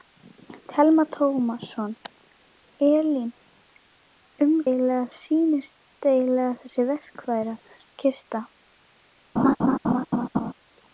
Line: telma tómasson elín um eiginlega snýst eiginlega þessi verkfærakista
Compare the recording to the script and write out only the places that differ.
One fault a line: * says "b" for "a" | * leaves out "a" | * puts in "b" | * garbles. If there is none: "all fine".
all fine